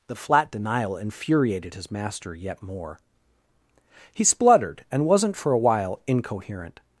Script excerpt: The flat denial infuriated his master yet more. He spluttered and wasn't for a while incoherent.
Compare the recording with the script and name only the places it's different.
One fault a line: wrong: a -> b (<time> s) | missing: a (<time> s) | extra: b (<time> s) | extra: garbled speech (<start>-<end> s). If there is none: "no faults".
no faults